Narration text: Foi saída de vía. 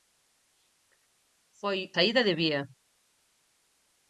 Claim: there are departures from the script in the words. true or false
false